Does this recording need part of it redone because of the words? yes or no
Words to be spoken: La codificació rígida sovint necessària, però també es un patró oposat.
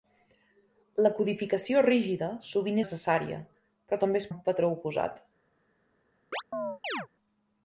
no